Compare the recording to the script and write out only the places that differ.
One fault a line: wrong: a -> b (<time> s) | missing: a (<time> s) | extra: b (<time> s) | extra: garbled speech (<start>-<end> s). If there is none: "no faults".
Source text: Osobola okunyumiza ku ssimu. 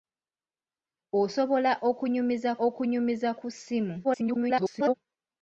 extra: okunyumiza (2.7 s)
extra: garbled speech (4.0-4.9 s)